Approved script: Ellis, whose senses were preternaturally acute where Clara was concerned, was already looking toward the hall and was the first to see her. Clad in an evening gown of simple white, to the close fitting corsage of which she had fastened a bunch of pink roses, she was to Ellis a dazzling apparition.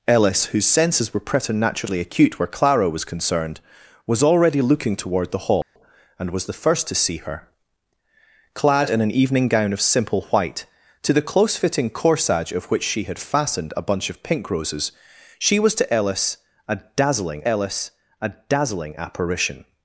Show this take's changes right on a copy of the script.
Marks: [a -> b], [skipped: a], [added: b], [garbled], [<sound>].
Ellis, whose senses were preternaturally acute where Clara was concerned, was already looking toward the hall [dropout] and was the first to see her. Clad in an evening gown of simple white, to the close fitting corsage of which she had fastened a bunch of pink roses, she was to Ellis a dazzling [added: Ellis a dazzling] apparition.